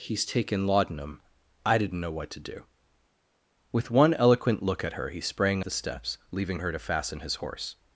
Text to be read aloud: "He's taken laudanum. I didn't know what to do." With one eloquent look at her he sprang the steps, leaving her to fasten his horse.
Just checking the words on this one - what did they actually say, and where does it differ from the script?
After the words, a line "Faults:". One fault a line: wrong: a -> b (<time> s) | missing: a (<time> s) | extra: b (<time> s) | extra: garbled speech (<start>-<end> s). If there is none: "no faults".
"He's taken laudanum. I didn't know what to do." With one eloquent look at her he sprang the steps, leaving her to fasten his horse.
Faults:
no faults